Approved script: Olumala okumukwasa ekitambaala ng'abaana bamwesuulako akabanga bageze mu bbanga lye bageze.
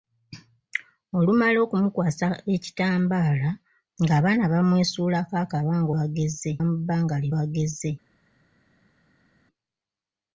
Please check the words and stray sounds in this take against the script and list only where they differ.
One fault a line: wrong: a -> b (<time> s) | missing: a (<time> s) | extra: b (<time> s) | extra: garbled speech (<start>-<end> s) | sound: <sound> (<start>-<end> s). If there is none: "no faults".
no faults